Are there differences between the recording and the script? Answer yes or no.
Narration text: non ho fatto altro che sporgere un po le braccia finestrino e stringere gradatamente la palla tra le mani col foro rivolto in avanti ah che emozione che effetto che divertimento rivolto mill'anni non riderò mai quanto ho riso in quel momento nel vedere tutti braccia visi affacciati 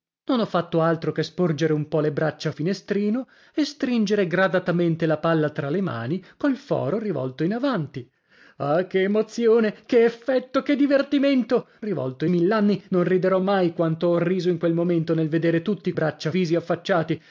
no